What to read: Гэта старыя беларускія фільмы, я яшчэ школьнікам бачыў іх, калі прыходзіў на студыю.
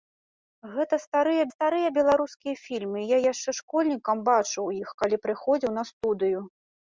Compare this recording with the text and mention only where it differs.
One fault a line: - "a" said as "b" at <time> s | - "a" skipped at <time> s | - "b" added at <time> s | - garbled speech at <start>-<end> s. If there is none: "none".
- "старыя" added at 1.5 s